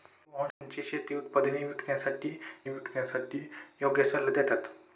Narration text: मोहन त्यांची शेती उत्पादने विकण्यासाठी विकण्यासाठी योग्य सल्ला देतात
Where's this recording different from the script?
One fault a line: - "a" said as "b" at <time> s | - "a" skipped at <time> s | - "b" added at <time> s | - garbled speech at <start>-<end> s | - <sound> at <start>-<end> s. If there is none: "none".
- dropout at 0.5-0.6 s